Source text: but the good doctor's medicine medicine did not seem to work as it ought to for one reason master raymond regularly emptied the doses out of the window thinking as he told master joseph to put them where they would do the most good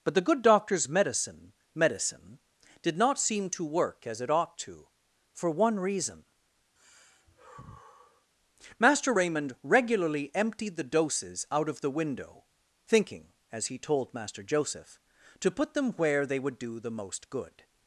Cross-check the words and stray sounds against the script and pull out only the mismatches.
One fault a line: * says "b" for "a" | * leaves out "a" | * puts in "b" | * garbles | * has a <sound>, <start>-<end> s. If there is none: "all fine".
* has a sigh, 6.8-8.3 s